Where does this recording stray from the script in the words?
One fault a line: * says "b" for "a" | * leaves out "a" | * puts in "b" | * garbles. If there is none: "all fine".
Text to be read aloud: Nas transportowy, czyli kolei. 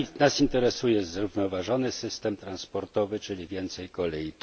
* puts in "interesuje zrównoważony system"
* puts in "więcej"